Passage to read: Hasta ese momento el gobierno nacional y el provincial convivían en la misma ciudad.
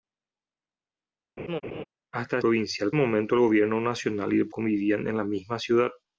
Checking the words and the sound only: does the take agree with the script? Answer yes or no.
no